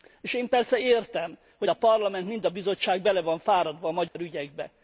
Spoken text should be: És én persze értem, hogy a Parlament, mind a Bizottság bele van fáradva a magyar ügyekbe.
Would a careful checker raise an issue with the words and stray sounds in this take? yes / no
yes